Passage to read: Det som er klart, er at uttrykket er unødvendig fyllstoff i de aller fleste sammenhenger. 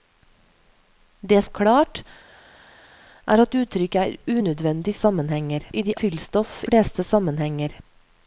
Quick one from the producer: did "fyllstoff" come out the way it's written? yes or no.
no